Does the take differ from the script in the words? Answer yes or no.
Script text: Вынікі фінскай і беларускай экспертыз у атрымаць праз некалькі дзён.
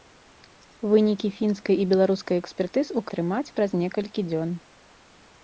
no